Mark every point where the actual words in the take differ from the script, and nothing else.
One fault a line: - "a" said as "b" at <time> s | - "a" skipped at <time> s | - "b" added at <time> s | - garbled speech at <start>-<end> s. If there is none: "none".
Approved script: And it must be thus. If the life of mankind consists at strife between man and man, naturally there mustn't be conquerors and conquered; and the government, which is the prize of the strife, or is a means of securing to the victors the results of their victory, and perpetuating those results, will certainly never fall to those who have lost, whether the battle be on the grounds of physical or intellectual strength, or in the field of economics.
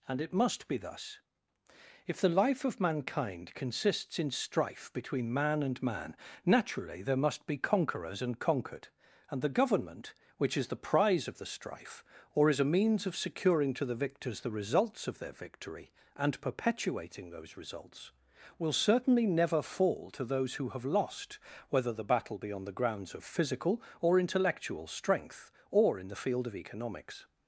- "at" said as "in" at 4.2 s
- "mustn't" said as "must" at 7.2 s